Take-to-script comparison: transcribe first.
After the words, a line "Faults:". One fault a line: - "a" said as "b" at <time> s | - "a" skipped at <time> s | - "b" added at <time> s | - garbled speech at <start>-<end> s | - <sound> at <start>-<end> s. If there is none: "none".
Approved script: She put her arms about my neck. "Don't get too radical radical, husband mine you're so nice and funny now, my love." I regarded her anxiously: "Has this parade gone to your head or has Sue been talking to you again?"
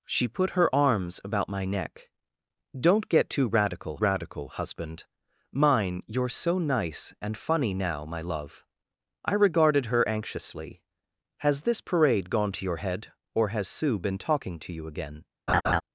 She put her arms about my neck. "Don't get too radical radical, husband mine you're so nice and funny now, my love." I regarded her anxiously: "Has this parade gone to your head or has Sue been talking to you again?"
Faults:
- laugh at 15.5-15.8 s